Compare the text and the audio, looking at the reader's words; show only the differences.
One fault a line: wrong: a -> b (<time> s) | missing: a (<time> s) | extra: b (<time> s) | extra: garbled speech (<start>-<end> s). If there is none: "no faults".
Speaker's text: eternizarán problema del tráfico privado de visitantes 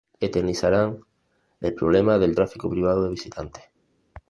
extra: el (1.6 s)